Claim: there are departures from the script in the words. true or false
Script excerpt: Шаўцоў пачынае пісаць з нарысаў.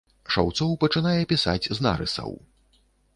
false